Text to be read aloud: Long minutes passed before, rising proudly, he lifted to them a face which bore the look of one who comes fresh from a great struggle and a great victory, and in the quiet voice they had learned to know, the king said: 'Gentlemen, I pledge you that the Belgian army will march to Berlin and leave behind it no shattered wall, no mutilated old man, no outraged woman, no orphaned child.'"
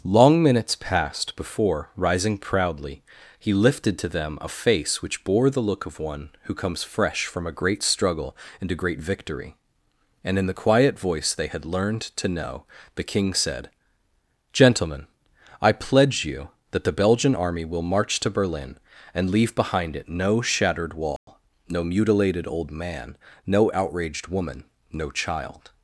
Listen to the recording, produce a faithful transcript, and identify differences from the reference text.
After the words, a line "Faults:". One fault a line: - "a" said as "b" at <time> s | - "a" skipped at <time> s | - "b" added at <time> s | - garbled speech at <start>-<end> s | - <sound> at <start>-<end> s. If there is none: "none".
Long minutes passed before, rising proudly, he lifted to them a face which bore the look of one who comes fresh from a great struggle and a great victory, and in the quiet voice they had learned to know, the king said: 'Gentlemen, I pledge you that the Belgian army will march to Berlin and leave behind it no shattered wall, no mutilated old man, no outraged woman, no child.'"
Faults:
- dropout at 21.2-21.3 s
- "orphaned" skipped at 25.1 s